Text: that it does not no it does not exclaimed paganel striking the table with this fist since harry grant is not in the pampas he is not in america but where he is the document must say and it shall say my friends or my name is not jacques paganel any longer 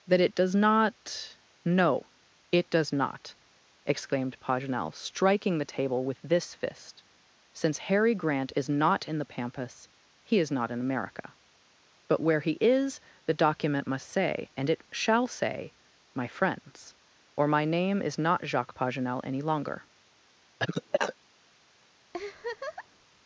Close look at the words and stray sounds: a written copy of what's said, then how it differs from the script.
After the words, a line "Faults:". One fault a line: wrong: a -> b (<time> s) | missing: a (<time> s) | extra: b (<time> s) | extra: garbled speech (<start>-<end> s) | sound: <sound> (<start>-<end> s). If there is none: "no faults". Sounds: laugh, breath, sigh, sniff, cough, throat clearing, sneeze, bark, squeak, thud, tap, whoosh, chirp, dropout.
that it does not no it does not exclaimed paganel striking the table with this fist since harry grant is not in the pampas he is not in america but where he is the document must say and it shall say my friends or my name is not jacques paganel any longer
Faults:
sound: cough (20.6-21.2 s)
sound: laugh (22.1-23.1 s)